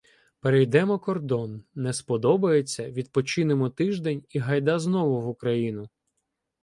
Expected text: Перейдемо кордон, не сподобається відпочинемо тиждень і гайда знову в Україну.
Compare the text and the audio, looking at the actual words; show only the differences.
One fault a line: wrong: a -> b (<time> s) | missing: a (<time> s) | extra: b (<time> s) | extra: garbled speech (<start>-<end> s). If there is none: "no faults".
no faults